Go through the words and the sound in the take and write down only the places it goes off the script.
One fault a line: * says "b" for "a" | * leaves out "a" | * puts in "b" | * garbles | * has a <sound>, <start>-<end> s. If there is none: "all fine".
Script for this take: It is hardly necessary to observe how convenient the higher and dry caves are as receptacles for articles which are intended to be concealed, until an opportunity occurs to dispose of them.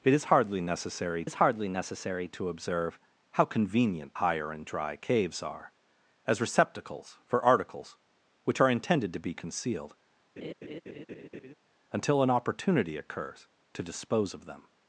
* puts in "is hardly necessary"
* leaves out "the"
* has a laugh, 10.4-11.5 s